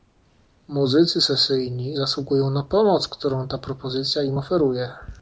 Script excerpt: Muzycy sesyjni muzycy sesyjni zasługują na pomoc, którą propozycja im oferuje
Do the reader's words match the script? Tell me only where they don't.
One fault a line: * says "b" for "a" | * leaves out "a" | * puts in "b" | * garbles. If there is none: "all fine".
* leaves out "muzycy sesyjni"
* puts in "ta"